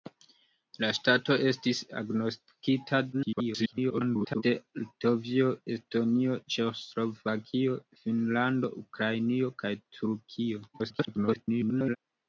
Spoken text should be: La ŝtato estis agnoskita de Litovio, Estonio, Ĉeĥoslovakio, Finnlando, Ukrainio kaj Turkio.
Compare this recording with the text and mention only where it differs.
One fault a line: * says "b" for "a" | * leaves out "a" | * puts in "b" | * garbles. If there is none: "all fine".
* garbles
* garbles